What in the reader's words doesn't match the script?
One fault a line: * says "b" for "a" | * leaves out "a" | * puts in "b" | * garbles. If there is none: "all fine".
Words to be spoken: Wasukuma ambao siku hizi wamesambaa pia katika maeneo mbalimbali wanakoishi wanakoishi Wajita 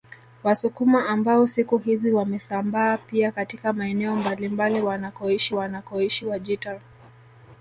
all fine